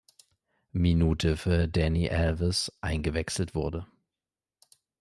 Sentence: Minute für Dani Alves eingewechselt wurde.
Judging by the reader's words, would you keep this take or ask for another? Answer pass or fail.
pass